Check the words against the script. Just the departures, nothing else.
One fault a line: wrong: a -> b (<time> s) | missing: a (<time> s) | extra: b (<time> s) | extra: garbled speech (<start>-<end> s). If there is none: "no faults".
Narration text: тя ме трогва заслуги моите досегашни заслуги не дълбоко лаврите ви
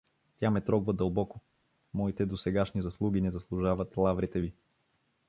wrong: заслуги -> дълбоко (0.9 s)
wrong: дълбоко -> заслужават (3.3 s)